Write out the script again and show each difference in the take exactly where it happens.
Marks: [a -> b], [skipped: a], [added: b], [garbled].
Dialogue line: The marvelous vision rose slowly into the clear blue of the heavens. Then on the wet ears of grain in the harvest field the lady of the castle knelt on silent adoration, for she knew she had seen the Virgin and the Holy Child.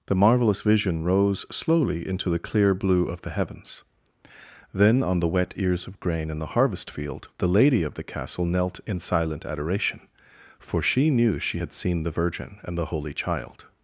The marvelous vision rose slowly into the clear blue of the heavens. Then on the wet ears of grain in the harvest field the lady of the castle knelt [on -> in] silent adoration, for she knew she had seen the Virgin and the Holy Child.